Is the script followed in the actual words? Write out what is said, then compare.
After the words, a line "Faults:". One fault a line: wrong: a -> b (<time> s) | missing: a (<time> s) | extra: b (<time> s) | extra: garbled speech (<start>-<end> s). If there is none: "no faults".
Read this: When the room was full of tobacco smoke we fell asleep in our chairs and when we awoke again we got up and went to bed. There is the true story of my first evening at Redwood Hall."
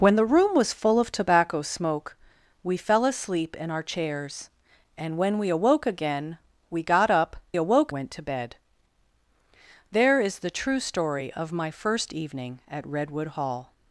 When the room was full of tobacco smoke we fell asleep in our chairs and when we awoke again we got up awoke went to bed. There is the true story of my first evening at Redwood Hall."
Faults:
wrong: and -> awoke (7.6 s)